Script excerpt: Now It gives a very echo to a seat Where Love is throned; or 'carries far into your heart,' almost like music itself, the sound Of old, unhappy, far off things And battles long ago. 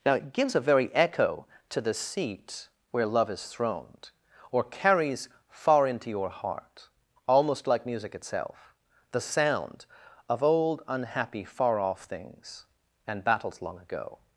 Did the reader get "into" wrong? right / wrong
right